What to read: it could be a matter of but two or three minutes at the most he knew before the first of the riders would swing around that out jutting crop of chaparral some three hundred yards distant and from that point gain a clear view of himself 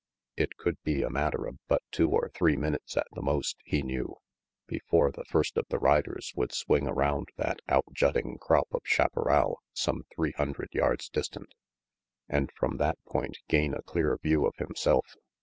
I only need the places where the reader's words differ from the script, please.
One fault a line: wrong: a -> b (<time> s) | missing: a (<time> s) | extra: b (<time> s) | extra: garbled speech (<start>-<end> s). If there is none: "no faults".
no faults